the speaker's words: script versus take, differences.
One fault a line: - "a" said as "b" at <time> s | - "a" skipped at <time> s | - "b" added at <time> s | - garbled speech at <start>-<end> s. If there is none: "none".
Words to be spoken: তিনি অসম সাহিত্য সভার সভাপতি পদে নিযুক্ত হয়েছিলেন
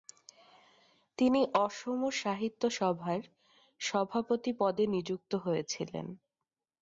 none